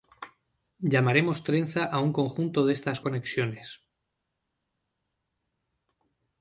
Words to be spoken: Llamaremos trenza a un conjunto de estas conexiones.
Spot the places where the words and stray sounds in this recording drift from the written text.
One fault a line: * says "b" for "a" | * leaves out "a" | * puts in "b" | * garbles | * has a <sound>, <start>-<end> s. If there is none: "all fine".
all fine